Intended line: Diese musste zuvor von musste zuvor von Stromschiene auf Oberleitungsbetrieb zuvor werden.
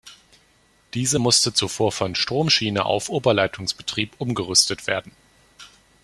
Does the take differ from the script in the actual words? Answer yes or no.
yes